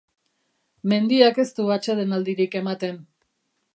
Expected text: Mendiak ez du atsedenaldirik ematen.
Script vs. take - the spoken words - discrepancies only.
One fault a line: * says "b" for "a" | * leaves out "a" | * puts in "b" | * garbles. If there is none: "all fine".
all fine